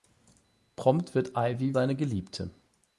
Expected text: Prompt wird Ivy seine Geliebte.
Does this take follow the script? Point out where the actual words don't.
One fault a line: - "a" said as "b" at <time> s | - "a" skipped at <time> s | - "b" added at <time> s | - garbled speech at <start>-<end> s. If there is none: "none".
none